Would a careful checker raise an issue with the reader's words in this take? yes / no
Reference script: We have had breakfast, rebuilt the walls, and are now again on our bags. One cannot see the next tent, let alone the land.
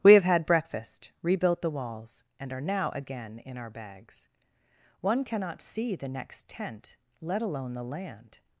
yes